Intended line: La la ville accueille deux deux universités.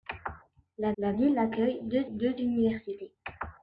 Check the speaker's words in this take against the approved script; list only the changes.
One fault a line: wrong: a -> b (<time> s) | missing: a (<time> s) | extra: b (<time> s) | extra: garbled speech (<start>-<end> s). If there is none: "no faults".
no faults